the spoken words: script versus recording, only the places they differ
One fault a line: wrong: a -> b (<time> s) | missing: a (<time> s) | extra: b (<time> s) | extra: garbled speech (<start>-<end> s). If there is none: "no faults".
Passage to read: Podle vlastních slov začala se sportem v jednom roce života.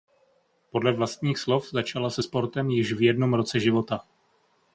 extra: již (2.7 s)